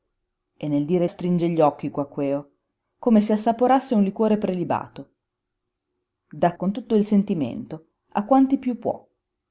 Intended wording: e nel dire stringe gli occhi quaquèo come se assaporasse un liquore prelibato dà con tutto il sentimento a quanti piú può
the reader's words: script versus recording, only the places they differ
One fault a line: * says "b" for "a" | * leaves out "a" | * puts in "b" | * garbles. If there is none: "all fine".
all fine